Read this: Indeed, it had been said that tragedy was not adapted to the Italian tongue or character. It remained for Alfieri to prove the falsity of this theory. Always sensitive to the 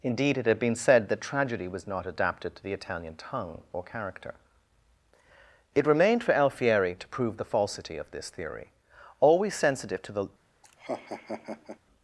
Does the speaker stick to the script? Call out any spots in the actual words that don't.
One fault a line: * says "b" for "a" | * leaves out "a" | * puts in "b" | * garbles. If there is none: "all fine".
all fine